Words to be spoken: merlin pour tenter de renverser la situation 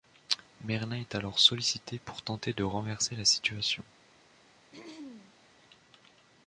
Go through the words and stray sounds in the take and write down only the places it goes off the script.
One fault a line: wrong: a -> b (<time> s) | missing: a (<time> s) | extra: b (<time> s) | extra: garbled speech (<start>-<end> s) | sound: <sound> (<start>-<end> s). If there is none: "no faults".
extra: est alors sollicité (0.9 s)
sound: throat clearing (4.7-5.3 s)